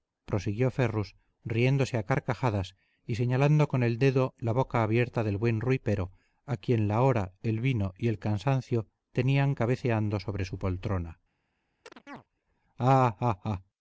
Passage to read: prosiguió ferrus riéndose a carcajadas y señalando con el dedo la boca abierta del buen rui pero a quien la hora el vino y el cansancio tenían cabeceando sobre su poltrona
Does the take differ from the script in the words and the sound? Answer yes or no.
yes